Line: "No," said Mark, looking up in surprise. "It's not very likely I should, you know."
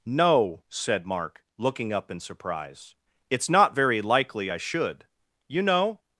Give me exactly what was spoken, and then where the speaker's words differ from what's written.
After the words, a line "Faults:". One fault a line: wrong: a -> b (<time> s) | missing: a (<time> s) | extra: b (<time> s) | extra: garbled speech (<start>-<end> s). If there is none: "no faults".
"No," said Mark, looking up in surprise. "It's not very likely I should, you know."
Faults:
no faults